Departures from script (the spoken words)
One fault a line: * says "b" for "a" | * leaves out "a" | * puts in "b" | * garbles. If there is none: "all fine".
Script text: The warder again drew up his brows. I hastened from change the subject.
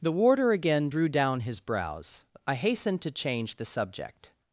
* says "down" for "up"
* says "to" for "from"